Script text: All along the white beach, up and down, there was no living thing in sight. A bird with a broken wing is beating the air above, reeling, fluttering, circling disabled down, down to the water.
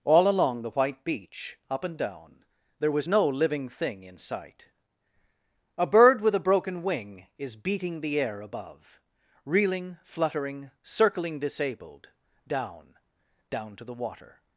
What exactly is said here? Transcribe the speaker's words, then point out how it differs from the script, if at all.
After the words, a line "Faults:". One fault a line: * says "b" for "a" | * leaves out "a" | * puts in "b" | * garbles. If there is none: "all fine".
All along the white beach, up and down, there was no living thing in sight. A bird with a broken wing is beating the air above, reeling, fluttering, circling disabled down, down to the water.
Faults:
all fine